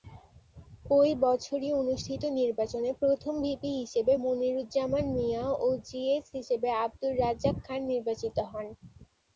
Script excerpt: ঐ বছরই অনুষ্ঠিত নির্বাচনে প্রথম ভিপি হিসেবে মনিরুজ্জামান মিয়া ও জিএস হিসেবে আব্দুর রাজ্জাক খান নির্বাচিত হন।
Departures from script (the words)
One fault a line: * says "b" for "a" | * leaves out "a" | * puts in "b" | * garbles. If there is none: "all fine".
all fine